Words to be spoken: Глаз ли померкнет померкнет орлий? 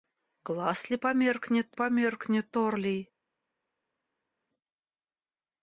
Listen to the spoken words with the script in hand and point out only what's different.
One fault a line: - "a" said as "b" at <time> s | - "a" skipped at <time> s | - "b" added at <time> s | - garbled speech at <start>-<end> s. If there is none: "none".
none